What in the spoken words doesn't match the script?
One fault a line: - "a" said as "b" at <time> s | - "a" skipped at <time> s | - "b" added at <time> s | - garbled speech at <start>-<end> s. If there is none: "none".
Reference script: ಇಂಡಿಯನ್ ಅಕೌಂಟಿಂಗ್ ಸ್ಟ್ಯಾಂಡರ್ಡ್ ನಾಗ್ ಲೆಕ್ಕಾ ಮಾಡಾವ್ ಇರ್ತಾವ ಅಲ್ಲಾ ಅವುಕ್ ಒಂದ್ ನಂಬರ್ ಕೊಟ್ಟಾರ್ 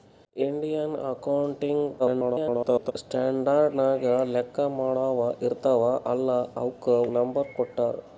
- garbled speech at 2.0-2.9 s
- "ಒಂದ್" skipped at 6.9 s